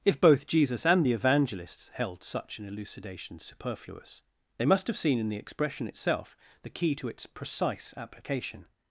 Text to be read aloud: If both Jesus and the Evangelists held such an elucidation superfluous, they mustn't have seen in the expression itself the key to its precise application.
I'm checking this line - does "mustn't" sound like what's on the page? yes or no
no